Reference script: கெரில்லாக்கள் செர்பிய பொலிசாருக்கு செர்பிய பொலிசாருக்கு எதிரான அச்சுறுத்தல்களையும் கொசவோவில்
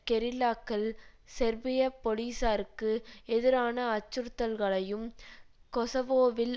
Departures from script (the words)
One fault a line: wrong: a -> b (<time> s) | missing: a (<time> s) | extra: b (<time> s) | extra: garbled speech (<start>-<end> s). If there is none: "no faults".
missing: செர்பிய பொலிசாருக்கு (2.9 s)